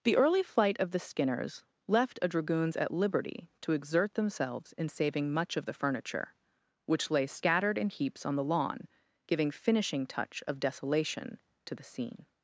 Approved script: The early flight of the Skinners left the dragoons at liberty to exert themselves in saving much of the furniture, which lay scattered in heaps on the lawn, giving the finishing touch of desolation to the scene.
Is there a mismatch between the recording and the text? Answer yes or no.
yes